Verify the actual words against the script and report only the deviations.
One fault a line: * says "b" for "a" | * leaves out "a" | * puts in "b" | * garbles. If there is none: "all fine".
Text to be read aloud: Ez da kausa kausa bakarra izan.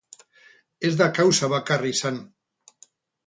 * leaves out "kausa"